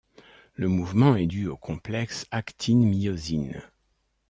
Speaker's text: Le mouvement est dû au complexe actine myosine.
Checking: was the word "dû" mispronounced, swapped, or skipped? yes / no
no